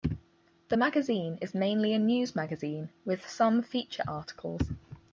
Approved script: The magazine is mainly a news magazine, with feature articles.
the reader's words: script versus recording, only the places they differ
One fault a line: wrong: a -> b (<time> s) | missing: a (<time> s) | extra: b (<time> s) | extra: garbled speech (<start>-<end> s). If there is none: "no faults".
extra: some (3.3 s)